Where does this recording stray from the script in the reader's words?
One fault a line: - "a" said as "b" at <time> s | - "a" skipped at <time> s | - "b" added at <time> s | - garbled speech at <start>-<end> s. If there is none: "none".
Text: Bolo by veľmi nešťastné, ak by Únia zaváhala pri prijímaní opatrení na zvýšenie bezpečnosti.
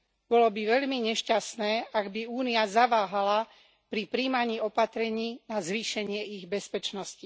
- "ich" added at 6.3 s